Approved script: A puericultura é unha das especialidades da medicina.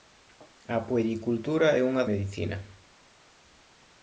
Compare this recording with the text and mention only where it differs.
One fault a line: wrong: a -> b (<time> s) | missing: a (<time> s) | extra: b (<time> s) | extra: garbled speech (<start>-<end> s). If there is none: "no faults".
missing: das especialidades da (2.0 s)